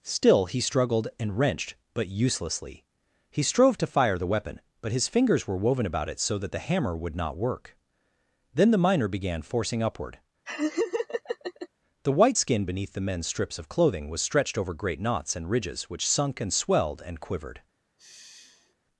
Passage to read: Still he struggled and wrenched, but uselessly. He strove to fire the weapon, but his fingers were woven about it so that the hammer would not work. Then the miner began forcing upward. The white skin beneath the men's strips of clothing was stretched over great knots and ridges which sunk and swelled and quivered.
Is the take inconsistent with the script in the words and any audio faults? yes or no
yes